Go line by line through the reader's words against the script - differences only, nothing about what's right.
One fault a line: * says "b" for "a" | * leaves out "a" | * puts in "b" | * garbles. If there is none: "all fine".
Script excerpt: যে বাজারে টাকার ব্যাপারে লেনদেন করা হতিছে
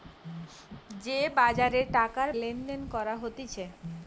* leaves out "ব্যাপারে"